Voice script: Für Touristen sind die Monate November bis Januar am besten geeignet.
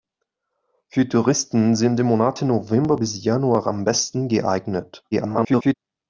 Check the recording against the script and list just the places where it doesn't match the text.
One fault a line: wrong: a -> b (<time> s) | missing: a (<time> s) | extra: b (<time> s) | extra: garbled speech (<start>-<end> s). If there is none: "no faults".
extra: garbled speech (5.1-5.7 s)